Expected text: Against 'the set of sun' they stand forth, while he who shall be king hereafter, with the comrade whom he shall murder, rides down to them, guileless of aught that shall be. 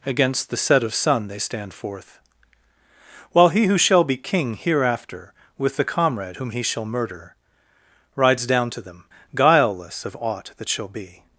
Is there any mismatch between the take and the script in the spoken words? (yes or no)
no